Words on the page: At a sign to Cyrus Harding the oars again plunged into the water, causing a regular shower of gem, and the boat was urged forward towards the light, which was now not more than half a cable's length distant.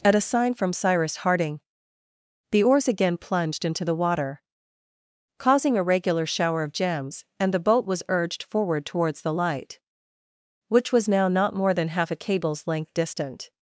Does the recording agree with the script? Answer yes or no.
no